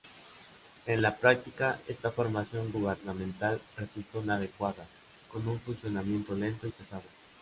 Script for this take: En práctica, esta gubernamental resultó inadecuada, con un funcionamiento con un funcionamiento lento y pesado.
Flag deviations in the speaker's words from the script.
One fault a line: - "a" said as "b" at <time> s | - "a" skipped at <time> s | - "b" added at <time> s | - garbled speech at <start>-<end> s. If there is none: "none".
- "la" added at 1.0 s
- "formación" added at 2.1 s
- "con un funcionamiento" skipped at 6.4 s